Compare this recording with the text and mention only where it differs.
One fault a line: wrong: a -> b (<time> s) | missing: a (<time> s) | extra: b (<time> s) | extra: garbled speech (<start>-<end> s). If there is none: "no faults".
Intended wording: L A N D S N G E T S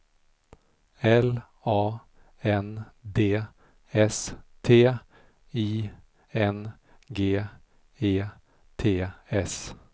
extra: T I (4.6 s)